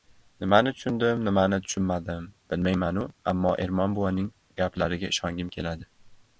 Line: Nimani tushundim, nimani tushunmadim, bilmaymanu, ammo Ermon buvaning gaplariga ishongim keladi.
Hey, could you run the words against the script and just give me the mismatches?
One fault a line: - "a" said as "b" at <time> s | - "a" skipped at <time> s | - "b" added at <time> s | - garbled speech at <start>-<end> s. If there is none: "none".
none